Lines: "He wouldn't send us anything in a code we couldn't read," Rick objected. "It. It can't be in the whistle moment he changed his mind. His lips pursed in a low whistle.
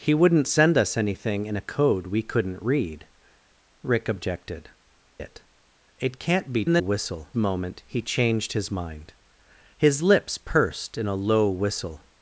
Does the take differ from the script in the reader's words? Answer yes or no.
no